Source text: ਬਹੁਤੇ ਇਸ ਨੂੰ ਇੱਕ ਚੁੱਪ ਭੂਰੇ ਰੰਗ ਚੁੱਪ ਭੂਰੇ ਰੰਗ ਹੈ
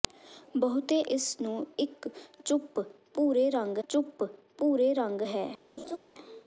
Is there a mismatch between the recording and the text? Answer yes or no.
no